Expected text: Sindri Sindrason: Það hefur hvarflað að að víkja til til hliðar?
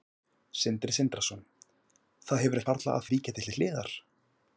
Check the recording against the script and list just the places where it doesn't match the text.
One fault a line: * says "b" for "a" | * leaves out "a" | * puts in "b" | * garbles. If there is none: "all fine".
all fine